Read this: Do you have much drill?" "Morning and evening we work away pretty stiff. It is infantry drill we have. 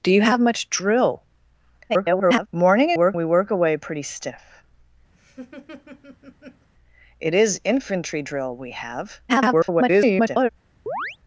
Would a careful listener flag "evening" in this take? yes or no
yes